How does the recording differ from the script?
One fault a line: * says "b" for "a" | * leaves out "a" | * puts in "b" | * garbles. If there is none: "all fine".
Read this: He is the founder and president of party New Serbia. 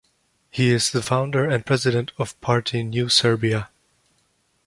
all fine